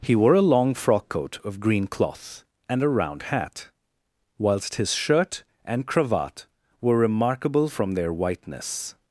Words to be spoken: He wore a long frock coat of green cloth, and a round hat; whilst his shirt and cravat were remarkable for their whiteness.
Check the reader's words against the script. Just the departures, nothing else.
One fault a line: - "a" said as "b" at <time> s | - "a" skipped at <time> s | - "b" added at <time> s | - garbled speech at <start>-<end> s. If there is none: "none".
- "for" said as "from" at 7.6 s